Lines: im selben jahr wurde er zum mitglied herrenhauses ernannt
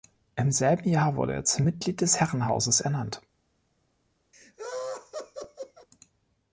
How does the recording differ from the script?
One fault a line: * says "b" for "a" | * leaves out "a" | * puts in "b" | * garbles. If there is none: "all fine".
* puts in "des"